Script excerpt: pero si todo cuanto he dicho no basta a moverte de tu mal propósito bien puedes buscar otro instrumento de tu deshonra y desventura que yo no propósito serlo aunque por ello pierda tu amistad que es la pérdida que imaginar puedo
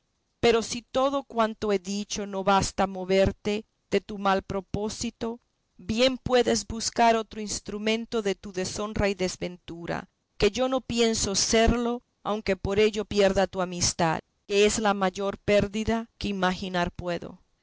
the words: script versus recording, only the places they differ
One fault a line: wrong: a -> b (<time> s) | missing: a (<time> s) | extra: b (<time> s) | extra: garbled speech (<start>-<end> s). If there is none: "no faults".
wrong: propósito -> pienso (10.8 s)
extra: mayor (14.9 s)